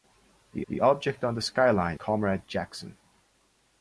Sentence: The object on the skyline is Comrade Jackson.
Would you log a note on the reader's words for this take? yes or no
yes